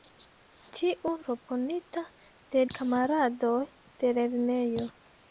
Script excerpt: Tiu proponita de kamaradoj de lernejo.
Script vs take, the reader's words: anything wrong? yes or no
no